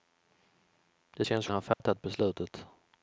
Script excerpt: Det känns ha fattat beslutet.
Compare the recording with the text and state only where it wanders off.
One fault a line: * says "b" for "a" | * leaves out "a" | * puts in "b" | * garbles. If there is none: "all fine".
all fine